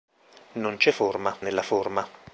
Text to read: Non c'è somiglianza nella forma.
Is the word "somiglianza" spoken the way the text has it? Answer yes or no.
no